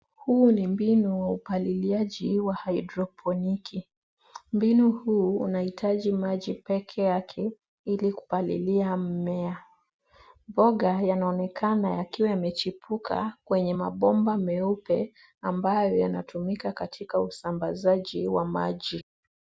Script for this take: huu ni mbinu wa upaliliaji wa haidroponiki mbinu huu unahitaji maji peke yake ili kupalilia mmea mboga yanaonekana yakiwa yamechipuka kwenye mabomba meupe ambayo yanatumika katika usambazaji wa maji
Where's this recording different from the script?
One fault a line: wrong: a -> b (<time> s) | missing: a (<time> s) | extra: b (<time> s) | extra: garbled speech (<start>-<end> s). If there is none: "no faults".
no faults